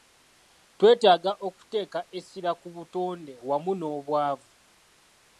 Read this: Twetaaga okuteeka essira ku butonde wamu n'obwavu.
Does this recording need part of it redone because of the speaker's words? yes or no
no